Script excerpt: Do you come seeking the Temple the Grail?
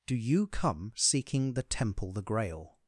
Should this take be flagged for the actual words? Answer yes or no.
no